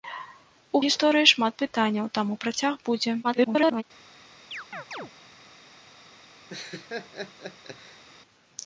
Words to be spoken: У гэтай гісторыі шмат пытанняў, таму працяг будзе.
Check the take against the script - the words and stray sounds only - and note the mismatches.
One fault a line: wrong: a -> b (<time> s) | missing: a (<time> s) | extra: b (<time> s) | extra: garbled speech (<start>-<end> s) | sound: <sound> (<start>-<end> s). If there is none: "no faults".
missing: гэтай (0.8 s)
extra: garbled speech (3.2-3.8 s)
sound: chirp (4.5-5.1 s)
sound: laugh (6.5-8.0 s)